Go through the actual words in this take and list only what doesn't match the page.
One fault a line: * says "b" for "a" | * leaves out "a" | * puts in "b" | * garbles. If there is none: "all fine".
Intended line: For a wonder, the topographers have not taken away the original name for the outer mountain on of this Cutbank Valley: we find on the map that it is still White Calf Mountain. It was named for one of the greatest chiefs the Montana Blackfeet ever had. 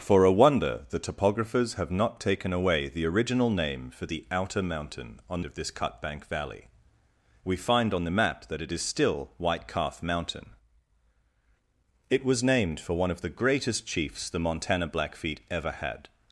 all fine